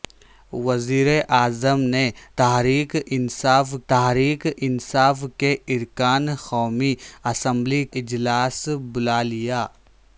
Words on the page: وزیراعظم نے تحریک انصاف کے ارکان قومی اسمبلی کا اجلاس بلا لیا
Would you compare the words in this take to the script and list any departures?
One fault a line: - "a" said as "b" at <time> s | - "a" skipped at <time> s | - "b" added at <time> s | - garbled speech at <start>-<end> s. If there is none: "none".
- "تحریک انصاف" added at 3.9 s
- "کا" skipped at 7.8 s